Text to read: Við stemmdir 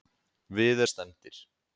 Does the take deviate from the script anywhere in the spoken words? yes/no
no